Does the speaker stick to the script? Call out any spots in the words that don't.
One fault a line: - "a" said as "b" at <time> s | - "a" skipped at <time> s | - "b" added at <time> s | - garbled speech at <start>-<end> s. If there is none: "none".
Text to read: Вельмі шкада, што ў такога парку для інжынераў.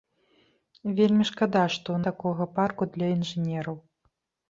none